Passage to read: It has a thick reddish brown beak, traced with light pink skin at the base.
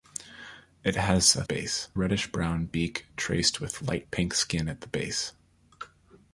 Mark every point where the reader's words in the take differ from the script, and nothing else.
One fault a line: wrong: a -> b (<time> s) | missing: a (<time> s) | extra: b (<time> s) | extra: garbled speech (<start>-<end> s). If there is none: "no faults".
wrong: thick -> base (1.4 s)